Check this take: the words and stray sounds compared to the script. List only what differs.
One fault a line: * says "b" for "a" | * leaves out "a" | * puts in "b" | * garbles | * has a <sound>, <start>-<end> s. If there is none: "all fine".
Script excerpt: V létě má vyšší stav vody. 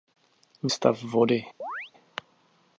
* leaves out "létě má vyšší"
* has a chirp, 1.6-1.9 s